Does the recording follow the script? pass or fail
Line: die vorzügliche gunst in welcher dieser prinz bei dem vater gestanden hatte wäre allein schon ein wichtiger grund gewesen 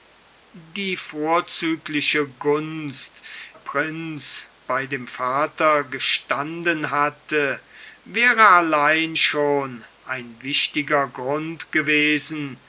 fail